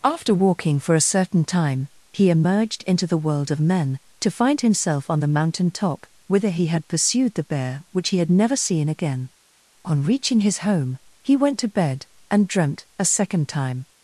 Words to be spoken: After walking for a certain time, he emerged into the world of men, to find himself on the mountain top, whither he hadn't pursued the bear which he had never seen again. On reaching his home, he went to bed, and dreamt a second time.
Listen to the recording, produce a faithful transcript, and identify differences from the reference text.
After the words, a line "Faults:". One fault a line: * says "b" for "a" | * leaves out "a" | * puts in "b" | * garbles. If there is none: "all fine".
After walking for a certain time, he emerged into the world of men, to find himself on the mountain top, whither he had pursued the bear which he had never seen again. On reaching his home, he went to bed, and dreamt a second time.
Faults:
* says "had" for "hadn't"